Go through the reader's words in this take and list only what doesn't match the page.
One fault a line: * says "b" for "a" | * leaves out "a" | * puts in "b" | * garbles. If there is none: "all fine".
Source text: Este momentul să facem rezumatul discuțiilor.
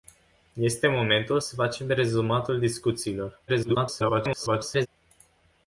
* garbles